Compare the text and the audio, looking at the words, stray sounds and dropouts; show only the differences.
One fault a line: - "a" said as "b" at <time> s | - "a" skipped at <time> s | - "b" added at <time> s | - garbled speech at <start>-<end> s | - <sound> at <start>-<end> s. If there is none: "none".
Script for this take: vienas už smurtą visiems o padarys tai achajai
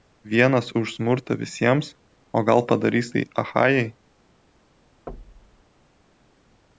- "gal" added at 2.5 s
- thud at 5.1-5.6 s